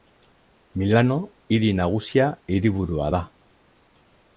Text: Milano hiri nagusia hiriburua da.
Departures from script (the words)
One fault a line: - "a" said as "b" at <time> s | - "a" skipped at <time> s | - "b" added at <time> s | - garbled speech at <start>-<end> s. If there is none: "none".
none